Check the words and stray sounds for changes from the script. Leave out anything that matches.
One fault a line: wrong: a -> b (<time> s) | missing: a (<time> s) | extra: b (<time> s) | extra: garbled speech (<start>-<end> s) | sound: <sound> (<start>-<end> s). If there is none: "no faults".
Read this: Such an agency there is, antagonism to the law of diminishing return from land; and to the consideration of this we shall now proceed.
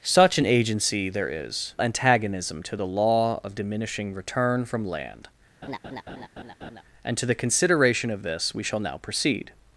sound: laugh (5.6-6.8 s)